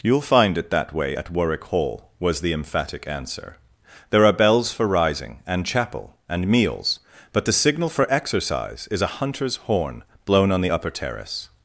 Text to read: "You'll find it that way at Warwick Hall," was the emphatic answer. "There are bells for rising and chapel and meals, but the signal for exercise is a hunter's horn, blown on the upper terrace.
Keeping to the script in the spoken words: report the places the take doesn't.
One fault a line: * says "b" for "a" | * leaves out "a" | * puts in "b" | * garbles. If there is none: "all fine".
all fine